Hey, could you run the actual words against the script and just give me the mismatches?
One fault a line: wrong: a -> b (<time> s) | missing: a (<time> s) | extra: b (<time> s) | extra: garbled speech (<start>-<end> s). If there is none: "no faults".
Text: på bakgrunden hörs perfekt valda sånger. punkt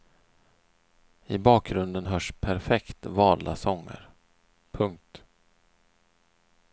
wrong: på -> I (1.3 s)